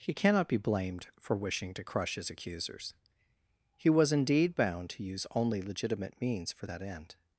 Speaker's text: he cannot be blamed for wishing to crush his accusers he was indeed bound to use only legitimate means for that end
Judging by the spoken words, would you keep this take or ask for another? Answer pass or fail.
pass